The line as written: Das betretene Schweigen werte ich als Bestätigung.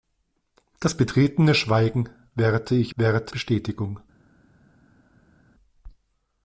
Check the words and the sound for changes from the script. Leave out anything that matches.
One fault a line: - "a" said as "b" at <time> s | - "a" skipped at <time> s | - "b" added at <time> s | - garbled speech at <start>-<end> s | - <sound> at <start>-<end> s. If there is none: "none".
- "als" said as "werte" at 2.9 s